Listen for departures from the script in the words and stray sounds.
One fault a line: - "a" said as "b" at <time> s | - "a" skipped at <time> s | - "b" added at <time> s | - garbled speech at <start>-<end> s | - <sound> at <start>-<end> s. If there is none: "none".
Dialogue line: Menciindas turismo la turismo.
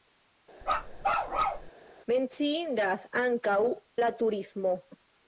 - bark at 0.6-1.7 s
- "turismo" said as "ankaŭ" at 3.2 s